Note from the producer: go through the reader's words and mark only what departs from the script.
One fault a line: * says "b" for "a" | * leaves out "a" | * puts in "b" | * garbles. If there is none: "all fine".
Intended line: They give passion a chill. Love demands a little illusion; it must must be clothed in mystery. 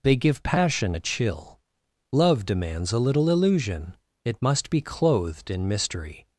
* leaves out "must"